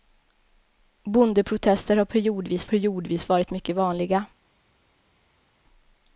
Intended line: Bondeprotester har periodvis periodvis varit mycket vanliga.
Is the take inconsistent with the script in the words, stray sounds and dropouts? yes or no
no